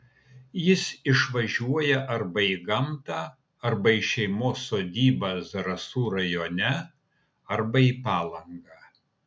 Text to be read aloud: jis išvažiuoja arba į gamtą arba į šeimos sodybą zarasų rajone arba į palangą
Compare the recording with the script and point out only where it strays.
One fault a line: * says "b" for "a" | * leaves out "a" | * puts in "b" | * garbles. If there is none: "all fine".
all fine